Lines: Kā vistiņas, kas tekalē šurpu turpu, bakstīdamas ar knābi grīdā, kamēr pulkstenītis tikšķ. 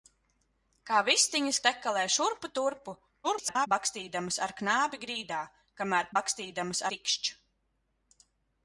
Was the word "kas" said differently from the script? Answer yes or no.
yes